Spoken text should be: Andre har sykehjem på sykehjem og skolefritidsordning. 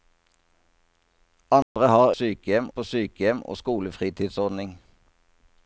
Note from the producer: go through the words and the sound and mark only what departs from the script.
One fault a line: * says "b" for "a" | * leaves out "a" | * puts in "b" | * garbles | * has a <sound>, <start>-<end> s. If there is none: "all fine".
* has a dropout, 1.6-1.8 s